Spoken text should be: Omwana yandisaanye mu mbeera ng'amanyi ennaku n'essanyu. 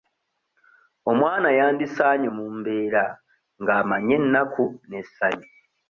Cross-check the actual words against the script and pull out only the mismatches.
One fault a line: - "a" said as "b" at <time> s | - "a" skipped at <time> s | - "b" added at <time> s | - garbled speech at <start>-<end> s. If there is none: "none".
none